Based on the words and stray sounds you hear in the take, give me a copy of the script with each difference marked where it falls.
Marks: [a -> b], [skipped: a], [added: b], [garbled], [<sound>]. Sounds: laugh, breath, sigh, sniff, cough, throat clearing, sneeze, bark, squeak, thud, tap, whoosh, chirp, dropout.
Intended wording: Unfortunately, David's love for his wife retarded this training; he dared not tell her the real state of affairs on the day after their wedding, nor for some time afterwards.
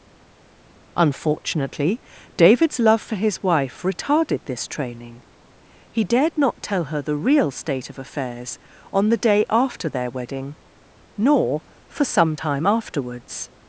Unfortunately, David's love for his wife retarded this training; he dared not tell her the real state of affairs on the day after their wedding, nor for some time afterwards.